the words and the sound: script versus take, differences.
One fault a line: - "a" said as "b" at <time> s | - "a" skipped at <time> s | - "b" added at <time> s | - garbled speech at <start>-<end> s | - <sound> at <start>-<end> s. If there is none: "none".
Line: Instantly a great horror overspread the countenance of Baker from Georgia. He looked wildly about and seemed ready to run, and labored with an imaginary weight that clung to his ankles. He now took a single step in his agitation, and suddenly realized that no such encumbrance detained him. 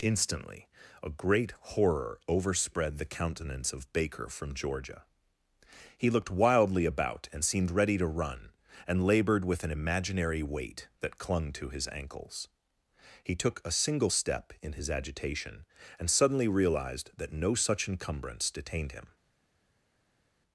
- "now" skipped at 13.3 s